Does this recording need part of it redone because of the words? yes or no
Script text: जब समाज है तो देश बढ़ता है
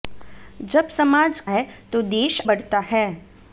no